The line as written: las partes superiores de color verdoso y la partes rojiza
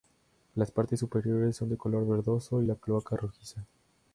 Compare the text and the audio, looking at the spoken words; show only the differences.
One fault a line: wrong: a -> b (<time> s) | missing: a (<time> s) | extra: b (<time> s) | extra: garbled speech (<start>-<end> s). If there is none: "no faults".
extra: son (1.6 s)
wrong: partes -> cloaca (2.8 s)